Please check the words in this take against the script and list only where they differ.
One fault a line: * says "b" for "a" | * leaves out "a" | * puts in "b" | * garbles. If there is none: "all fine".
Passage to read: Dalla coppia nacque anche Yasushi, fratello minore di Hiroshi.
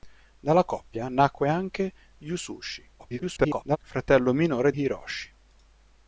* garbles
* leaves out "di"